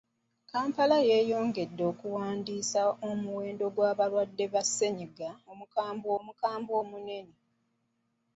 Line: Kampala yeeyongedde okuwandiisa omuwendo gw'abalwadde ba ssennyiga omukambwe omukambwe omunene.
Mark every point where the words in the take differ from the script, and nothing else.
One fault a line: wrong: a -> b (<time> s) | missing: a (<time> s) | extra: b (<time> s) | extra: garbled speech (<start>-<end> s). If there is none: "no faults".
no faults